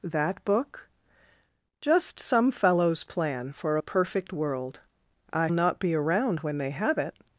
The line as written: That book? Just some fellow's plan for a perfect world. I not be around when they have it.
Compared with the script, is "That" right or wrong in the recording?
right